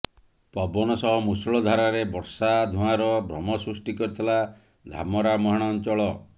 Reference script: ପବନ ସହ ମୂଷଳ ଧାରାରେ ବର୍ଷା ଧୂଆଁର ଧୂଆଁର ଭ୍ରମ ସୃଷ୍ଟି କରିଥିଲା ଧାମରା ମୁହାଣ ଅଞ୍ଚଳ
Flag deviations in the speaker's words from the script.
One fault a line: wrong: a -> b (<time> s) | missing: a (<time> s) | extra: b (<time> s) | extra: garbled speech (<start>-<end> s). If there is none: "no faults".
missing: ଧୂଆଁର (3.1 s)